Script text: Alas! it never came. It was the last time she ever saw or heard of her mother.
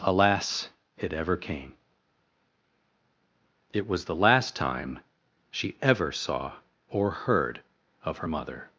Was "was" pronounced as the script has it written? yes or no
yes